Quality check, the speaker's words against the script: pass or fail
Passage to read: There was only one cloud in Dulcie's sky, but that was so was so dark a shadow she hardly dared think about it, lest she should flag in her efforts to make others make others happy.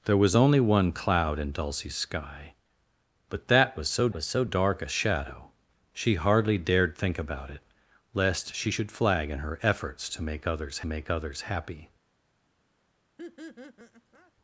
pass